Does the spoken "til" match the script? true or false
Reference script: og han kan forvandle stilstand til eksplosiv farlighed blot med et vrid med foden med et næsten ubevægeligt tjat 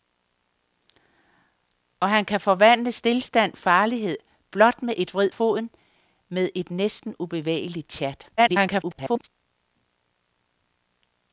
false